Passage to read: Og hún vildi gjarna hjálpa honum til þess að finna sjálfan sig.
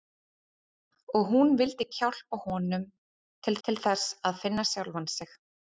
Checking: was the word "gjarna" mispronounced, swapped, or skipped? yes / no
yes